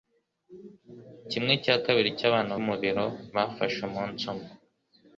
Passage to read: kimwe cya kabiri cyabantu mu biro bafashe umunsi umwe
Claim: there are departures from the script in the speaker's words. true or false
false